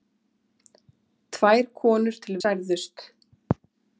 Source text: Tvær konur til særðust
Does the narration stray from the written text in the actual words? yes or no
no